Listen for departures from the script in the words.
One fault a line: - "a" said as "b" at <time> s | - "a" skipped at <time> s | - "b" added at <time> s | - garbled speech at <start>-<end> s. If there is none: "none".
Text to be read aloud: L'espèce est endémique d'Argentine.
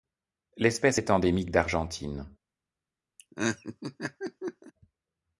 none